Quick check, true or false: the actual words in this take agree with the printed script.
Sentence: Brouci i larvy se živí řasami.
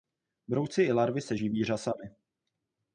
true